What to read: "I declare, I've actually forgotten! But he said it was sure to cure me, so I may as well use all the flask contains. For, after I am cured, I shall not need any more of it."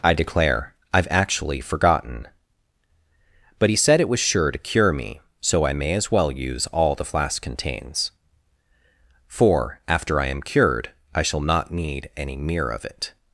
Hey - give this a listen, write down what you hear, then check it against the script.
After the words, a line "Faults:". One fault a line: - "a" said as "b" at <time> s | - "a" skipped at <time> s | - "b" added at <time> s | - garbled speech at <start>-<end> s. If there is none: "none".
"I declare, I've actually forgotten! But he said it was sure to cure me, so I may as well use all the flask contains. For, after I am cured, I shall not need any mere of it."
Faults:
- "more" said as "mere" at 12.4 s